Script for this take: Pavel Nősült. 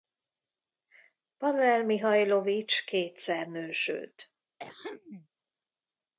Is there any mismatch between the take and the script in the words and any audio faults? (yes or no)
yes